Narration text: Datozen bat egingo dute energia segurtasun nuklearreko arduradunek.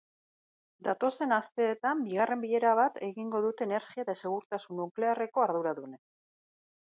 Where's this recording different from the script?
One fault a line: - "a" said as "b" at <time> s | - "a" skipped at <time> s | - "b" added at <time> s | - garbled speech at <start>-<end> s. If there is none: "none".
- "asteetan bigarren bilera" added at 1.4 s
- "eta" added at 4.0 s